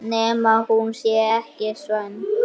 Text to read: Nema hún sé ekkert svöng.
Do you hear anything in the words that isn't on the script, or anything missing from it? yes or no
no